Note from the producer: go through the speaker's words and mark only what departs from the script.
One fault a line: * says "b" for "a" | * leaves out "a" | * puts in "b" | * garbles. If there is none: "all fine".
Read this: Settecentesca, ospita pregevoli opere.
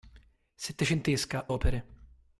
* leaves out "ospita pregevoli"